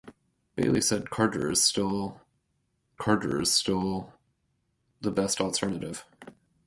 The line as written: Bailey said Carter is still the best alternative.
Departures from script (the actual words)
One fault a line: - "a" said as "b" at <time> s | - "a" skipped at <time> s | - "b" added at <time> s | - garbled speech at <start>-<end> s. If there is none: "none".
- "Carter is still" added at 3.0 s